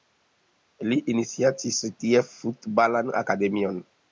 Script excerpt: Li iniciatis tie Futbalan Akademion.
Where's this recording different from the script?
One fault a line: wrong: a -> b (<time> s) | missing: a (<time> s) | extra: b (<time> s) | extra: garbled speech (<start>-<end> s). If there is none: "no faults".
no faults